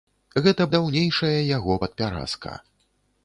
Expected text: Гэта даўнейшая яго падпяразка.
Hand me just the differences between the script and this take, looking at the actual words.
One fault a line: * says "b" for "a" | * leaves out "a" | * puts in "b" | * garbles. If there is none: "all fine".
all fine